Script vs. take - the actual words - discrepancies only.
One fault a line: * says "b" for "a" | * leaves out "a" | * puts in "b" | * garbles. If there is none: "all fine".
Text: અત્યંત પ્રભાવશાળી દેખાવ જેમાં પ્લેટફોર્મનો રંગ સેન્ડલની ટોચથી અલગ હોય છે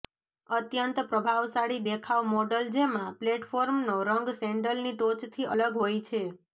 * puts in "મોડલ"